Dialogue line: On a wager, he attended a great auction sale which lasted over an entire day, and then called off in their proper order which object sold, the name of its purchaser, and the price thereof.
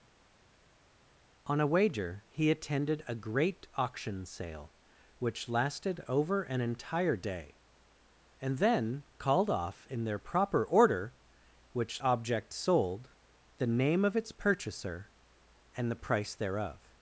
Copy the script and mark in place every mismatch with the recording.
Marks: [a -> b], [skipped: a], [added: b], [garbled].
On a wager, he attended a great auction sale which lasted over an entire day, and then called off in their proper order which object sold, the name of its purchaser, and the price thereof.